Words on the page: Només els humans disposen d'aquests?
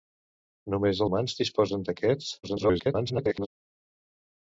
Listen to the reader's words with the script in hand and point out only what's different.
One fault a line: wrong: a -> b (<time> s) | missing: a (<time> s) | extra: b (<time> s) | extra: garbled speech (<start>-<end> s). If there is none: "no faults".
missing: els (1.0 s)
extra: garbled speech (2.4-3.5 s)